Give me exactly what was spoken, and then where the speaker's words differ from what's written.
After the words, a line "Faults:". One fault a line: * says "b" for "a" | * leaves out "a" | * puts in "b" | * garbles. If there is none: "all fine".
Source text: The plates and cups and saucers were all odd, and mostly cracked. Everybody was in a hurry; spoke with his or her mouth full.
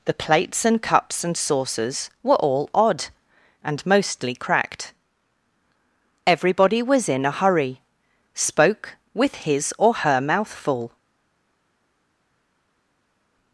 The plates and cups and saucers were all odd, and mostly cracked. Everybody was in a hurry; spoke with his or her mouth full.
Faults:
all fine